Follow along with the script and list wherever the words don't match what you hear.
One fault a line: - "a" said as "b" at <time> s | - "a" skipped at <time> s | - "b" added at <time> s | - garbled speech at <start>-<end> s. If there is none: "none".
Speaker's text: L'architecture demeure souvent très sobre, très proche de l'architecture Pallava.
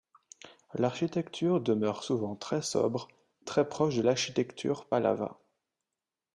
none